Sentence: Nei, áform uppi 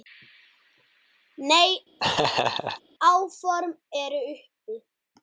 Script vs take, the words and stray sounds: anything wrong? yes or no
yes